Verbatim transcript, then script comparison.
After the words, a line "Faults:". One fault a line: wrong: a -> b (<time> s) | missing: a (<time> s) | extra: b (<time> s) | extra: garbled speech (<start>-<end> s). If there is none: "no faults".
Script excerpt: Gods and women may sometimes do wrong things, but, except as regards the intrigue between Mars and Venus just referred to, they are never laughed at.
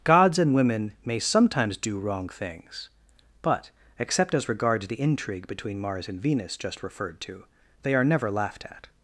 Gods and women may sometimes do wrong things, but, except as regards the intrigue between Mars and Venus just referred to, they are never laughed at.
Faults:
no faults